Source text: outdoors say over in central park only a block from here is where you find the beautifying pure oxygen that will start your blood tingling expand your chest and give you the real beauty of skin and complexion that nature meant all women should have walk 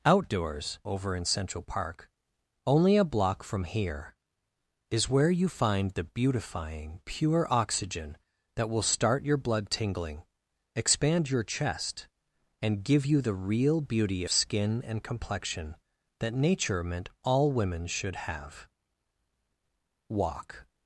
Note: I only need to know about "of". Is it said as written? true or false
false